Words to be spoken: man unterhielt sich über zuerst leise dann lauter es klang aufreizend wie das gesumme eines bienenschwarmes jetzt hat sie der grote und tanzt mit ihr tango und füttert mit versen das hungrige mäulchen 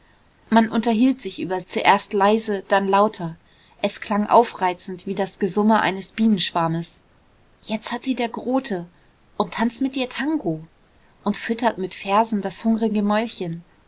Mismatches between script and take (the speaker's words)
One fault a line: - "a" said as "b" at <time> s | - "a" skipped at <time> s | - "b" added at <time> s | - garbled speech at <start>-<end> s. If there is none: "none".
none